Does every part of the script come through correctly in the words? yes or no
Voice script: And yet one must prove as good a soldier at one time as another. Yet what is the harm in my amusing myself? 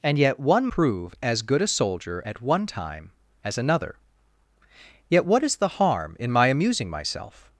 no